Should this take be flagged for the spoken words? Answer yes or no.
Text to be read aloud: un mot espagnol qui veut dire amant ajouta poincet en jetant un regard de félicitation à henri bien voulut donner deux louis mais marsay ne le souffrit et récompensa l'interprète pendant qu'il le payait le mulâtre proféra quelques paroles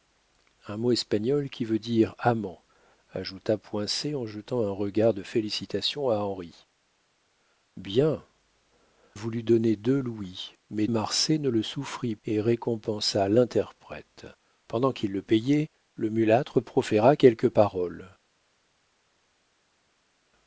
no